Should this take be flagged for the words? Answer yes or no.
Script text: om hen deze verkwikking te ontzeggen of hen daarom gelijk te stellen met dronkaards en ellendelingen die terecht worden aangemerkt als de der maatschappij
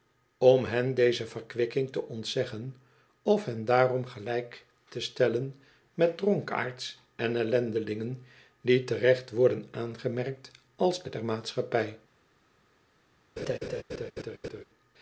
no